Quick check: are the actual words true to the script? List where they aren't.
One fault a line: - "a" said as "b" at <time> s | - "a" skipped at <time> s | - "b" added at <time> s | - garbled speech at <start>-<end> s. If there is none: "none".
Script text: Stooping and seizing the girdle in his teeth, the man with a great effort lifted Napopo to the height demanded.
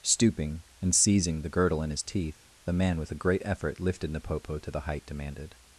none